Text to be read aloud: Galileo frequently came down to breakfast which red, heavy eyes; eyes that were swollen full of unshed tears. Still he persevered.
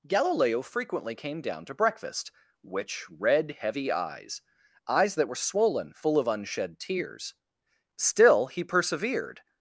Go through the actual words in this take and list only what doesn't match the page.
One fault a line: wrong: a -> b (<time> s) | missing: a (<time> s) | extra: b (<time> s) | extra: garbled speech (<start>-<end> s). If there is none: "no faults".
no faults